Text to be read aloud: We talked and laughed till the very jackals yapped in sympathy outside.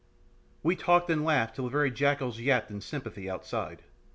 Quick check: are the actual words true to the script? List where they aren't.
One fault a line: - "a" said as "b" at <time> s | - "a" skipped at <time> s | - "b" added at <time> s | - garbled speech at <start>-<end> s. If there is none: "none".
none